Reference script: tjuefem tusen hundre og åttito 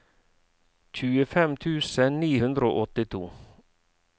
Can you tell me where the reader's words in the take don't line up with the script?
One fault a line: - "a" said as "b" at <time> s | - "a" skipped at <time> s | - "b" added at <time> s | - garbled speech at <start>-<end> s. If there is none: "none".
- "ni" added at 2.2 s